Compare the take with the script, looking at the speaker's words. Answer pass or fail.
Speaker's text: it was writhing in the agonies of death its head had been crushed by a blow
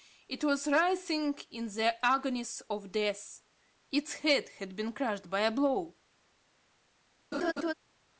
pass